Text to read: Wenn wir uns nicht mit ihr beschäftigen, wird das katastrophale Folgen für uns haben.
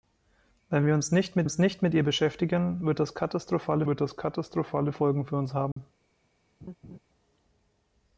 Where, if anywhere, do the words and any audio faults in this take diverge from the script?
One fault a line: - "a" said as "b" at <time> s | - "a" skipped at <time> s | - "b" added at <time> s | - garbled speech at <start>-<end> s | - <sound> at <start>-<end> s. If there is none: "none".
- "uns nicht mit" added at 1.4 s
- "wird das katastrophale" added at 3.8 s
- dropout at 5.7-5.8 s
- laugh at 6.6-7.0 s